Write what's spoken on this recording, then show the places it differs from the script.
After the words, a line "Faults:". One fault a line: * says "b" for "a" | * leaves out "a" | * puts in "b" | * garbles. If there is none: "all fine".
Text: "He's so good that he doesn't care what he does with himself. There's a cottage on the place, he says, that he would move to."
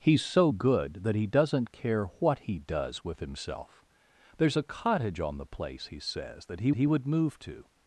"He's so good that he doesn't care what he does with himself. There's a cottage on the place, he says, that he he would move to."
Faults:
* puts in "he"